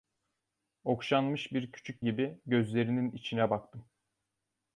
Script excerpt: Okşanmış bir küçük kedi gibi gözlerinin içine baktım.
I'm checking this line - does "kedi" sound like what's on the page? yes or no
no